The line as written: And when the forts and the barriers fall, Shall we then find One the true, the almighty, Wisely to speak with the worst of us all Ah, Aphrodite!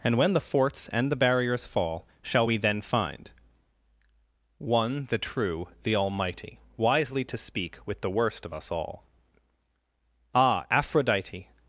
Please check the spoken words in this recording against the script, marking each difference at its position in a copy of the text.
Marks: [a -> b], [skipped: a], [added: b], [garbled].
And when the forts and the barriers fall, Shall we then find One the true, the almighty, Wisely to speak with the worst of us all Ah, Aphrodite!